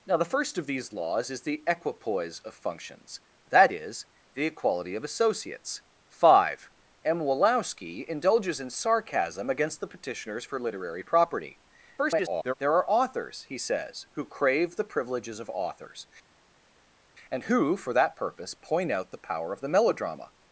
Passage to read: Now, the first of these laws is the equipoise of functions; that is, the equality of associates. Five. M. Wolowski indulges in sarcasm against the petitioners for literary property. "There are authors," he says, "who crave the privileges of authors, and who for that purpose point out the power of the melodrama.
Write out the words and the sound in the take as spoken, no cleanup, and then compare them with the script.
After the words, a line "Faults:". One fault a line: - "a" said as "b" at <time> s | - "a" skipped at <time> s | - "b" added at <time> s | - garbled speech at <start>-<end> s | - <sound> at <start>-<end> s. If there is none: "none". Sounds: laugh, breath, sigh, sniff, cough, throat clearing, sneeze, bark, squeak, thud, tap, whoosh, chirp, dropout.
Now, the first of these laws is the equipoise of functions; that is, the equality of associates. Five. M. Wolowski indulges in sarcasm against the petitioners for literary property. [garbled] "There are authors," he says, "who crave the privileges of authors, and who for that purpose point out the power of the melodrama.
Faults:
- garbled speech at 12.0-12.5 s